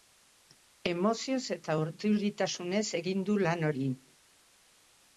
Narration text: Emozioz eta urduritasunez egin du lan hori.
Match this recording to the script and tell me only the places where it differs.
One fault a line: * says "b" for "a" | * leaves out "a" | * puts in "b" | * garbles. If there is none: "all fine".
all fine